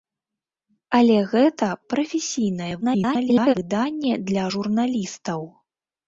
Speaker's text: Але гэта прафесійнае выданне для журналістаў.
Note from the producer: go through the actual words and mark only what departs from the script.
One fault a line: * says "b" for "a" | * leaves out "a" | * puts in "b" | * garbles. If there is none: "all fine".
* garbles